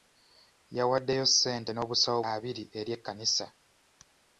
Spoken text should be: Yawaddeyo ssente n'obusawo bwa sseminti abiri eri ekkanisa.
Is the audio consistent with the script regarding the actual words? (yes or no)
no